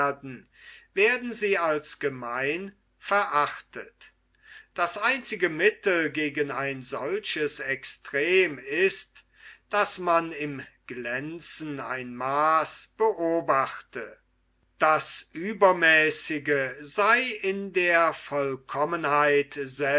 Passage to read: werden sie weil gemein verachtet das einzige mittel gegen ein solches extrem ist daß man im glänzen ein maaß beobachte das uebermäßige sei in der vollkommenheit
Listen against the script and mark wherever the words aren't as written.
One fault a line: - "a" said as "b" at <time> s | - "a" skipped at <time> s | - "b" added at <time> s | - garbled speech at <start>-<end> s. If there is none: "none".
- "weil" said as "als" at 1.6 s